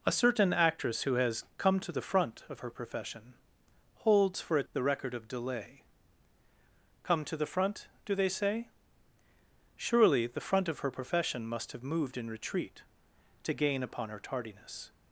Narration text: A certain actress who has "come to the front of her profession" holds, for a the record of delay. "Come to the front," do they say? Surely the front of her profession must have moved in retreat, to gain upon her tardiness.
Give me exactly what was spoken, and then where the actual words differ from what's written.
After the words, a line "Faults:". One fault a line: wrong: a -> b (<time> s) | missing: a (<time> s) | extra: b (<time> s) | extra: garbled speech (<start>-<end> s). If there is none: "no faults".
A certain actress who has "come to the front of her profession" holds, for a the record of delay. "Come to the front," do they say? Surely the front of her profession must have moved in retreat, to gain upon her tardiness.
Faults:
no faults